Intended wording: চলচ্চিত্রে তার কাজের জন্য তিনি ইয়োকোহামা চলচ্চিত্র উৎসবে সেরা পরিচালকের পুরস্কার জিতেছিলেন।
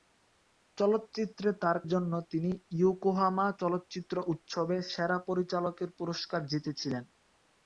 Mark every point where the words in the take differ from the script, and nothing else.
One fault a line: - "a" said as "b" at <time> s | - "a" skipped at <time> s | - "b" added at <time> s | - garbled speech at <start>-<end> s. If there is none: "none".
- "কাজের" skipped at 1.8 s